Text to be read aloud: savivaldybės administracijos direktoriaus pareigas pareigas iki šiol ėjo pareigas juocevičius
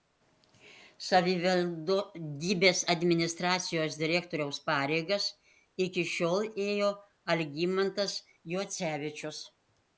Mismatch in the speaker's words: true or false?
true